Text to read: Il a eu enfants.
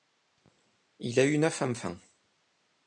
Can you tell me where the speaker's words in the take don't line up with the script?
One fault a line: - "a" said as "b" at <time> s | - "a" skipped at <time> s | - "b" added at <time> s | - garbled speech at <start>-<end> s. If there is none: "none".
- "neuf" added at 1.4 s